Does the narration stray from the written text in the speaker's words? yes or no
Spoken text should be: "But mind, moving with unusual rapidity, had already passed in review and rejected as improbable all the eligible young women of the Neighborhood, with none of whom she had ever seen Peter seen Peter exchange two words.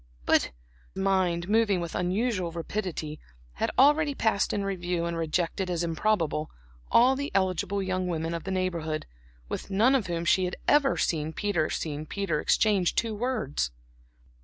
no